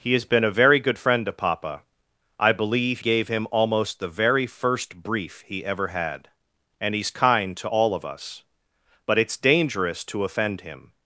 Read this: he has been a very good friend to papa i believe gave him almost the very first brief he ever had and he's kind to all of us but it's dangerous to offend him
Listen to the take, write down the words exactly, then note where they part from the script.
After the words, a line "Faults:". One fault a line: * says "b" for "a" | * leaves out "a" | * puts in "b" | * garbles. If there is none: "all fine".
he has been a very good friend to papa i believe gave him almost the very first brief he ever had and he's kind to all of us but it's dangerous to offend him
Faults:
all fine